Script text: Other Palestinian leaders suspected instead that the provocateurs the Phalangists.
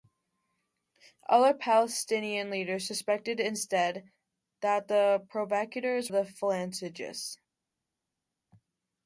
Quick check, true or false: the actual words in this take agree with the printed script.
true